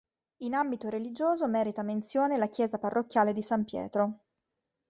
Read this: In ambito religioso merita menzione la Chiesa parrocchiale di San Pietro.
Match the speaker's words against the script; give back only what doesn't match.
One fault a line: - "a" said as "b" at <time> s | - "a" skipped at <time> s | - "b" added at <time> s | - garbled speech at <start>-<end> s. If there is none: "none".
none